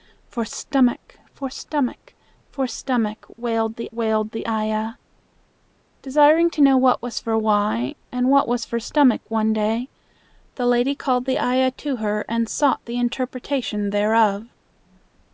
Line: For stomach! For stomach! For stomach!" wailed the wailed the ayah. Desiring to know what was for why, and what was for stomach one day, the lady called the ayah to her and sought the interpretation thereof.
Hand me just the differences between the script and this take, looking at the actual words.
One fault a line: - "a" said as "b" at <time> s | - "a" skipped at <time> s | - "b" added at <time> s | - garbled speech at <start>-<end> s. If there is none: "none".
none